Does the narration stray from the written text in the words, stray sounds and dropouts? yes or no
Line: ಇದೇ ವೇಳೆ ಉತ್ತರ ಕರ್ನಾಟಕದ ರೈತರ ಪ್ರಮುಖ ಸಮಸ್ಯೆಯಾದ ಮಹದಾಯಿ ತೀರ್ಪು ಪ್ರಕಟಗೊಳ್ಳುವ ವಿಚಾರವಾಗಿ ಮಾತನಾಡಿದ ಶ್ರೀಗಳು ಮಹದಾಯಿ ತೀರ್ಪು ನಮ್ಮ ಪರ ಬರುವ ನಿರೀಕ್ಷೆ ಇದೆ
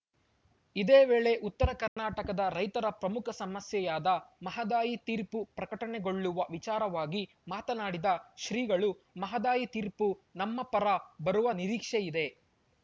yes